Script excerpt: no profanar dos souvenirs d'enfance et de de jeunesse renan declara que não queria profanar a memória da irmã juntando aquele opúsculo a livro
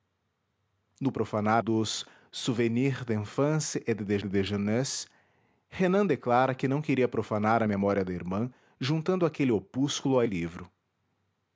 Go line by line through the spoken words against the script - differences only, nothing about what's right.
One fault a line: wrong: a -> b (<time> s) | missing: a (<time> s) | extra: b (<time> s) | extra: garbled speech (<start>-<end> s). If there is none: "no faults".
no faults